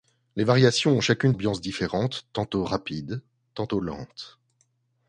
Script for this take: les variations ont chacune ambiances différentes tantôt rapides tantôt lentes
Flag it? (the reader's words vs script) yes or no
no